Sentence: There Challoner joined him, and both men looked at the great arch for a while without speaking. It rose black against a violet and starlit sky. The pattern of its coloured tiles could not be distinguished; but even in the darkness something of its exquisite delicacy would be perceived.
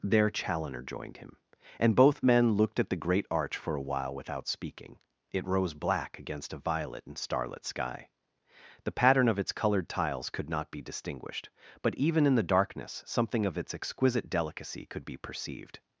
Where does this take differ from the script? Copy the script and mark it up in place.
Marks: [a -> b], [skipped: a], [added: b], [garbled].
There Challoner joined him, and both men looked at the great arch for a while without speaking. It rose black against a violet and starlit sky. The pattern of its coloured tiles could not be distinguished; but even in the darkness something of its exquisite delicacy [would -> could] be perceived.